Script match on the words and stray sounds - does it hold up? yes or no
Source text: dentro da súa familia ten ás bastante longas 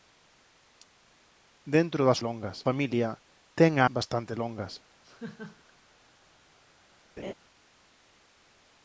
no